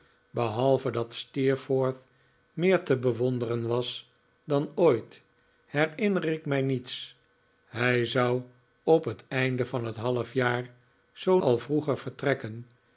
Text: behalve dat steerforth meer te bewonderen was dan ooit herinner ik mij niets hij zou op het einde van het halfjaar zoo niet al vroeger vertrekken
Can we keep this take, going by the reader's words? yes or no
no